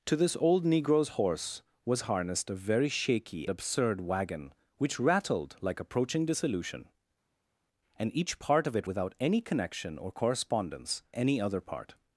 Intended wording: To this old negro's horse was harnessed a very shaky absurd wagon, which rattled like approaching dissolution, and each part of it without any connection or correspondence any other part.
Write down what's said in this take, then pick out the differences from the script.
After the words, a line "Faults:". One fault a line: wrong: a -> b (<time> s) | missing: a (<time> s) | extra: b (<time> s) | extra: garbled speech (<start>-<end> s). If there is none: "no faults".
To this old negro's horse was harnessed a very shaky absurd wagon, which rattled like approaching dissolution, and each part of it without any connection or correspondence any other part.
Faults:
no faults